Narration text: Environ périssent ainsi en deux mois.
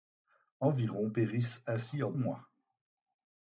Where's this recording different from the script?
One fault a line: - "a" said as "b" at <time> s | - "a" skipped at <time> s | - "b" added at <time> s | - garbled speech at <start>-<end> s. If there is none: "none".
- "deux" skipped at 2.1 s